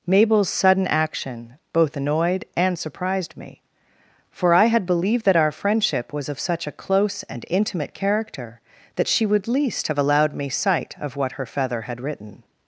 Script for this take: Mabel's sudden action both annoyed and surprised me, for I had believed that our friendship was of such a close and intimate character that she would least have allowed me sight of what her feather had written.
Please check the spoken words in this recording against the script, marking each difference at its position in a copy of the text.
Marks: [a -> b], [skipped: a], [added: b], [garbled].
Mabel's sudden action both annoyed and surprised me, for I had believed that our friendship was of such a close and intimate character that she would least have allowed me sight of what her feather had written.